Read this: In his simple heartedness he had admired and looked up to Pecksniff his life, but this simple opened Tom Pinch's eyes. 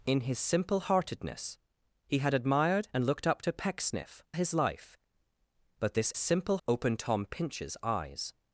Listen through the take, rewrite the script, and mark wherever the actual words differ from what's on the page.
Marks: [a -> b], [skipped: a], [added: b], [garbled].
In his simple heartedness he had admired and looked up to Pecksniff his life, but this simple opened Tom Pinch's eyes.